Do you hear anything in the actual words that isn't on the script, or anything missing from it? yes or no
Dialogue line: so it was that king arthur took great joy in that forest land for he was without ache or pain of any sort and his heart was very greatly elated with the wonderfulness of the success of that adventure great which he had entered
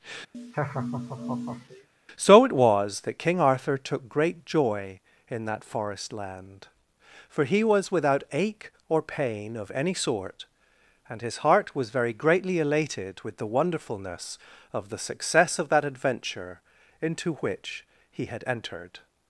yes